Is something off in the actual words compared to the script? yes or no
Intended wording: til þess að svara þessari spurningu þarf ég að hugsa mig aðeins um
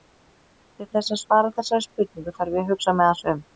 no